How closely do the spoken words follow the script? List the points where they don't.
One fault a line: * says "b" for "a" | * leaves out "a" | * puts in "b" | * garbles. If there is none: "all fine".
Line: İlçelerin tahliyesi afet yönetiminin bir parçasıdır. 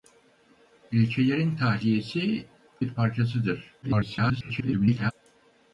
* leaves out "afet yönetiminin"
* garbles